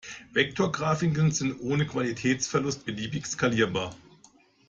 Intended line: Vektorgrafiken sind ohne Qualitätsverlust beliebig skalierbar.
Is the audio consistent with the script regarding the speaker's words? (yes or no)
yes